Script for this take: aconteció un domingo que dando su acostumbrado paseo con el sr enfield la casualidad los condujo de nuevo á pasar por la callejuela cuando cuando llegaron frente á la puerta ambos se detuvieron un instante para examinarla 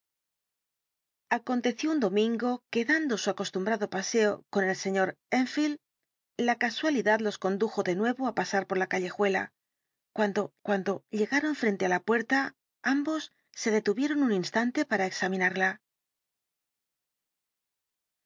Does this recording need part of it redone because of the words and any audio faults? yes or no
no